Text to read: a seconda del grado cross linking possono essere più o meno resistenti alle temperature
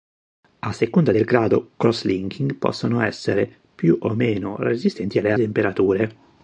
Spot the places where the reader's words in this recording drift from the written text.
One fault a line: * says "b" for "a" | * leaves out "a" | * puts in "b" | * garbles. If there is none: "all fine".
all fine